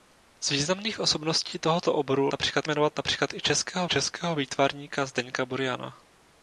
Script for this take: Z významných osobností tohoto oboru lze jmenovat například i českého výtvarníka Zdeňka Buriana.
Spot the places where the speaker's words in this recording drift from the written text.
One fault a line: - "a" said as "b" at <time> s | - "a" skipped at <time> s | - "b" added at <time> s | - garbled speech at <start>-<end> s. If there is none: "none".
- "lze" said as "například" at 2.3 s
- "českého" added at 3.8 s